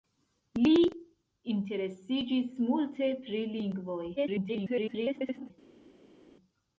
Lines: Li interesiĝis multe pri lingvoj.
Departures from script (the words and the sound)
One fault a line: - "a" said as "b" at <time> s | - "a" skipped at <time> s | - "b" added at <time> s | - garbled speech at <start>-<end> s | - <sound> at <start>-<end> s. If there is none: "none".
- garbled speech at 4.2-5.5 s